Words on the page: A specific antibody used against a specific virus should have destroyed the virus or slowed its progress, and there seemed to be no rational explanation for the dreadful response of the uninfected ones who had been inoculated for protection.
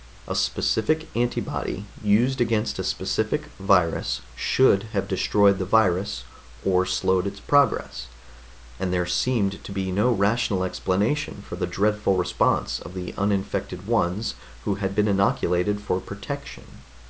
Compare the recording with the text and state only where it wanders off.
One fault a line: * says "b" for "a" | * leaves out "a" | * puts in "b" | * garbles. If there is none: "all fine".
all fine